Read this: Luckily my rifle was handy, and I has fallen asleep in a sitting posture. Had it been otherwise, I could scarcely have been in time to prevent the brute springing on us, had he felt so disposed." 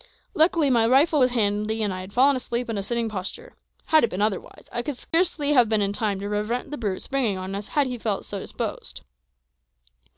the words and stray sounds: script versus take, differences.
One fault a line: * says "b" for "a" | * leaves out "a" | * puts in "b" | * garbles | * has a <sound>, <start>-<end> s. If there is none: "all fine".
* says "had" for "has"
* has a dropout, 5.1-5.1 s